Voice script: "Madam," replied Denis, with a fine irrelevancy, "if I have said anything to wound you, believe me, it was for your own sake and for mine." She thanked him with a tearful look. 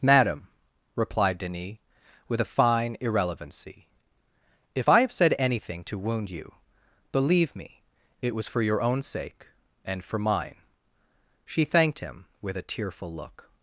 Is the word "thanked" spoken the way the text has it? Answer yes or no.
yes